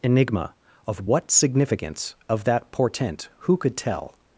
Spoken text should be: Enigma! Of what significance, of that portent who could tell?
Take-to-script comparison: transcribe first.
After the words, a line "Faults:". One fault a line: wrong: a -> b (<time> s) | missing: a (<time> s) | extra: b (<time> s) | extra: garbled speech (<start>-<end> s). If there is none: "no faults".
Enigma! Of what significance, of that portent who could tell?
Faults:
no faults